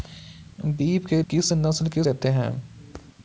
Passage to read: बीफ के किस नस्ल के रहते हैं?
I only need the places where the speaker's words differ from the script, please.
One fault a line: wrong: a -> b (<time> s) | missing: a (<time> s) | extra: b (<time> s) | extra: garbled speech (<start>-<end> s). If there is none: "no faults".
no faults